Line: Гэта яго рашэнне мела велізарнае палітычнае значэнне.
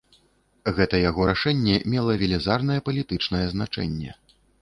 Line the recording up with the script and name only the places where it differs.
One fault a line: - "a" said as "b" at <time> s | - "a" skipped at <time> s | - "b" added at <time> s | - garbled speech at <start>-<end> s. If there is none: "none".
none